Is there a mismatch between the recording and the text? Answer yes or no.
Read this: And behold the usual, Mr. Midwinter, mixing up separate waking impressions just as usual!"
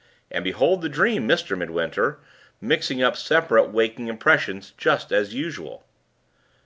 yes